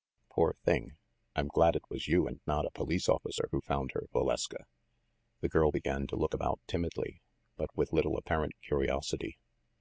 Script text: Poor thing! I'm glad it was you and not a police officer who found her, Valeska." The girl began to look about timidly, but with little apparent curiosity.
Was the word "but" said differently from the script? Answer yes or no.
no